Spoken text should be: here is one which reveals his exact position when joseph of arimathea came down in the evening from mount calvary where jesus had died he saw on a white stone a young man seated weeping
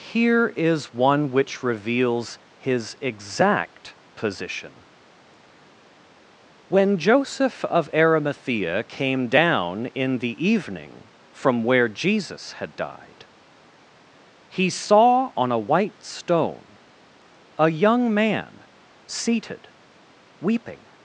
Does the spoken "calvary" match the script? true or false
false